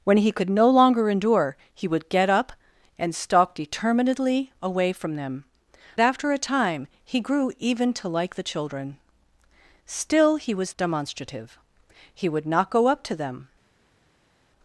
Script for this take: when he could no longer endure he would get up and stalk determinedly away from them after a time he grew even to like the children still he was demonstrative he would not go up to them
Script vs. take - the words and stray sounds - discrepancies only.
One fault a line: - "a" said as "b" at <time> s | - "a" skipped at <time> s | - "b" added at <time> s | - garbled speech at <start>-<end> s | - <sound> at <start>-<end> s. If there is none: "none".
none